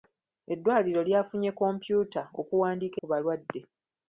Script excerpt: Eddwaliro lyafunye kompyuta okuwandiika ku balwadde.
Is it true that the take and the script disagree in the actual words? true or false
false